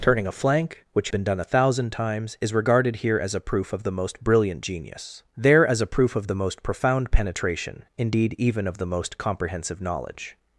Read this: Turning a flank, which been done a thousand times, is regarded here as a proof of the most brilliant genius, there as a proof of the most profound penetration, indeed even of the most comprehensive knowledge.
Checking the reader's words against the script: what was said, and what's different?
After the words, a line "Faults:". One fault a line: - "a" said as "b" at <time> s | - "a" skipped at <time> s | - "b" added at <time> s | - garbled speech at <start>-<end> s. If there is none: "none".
Turning a flank, which been done a thousand times, is regarded here as a proof of the most brilliant genius, there as a proof of the most profound penetration, indeed even of the most comprehensive knowledge.
Faults:
none